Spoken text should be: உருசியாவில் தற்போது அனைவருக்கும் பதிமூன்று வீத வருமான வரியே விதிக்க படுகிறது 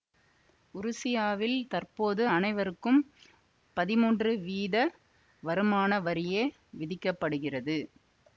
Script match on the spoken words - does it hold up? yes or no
yes